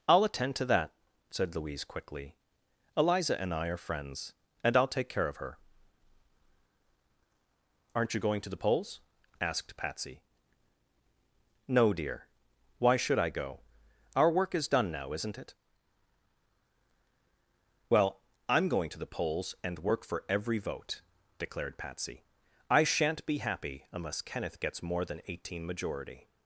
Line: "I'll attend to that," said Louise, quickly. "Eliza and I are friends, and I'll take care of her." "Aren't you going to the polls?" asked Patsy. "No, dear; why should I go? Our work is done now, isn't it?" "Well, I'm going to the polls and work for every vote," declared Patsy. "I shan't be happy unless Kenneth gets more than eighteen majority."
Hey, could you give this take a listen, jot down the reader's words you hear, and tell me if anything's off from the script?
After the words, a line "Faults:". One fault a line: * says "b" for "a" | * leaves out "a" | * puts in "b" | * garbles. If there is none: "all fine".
"I'll attend to that," said Louise, quickly. "Eliza and I are friends, and I'll take care of her." "Aren't you going to the polls?" asked Patsy. "No, dear; why should I go? Our work is done now, isn't it?" "Well, I'm going to the polls and work for every vote," declared Patsy. "I shan't be happy unless Kenneth gets more than eighteen majority."
Faults:
all fine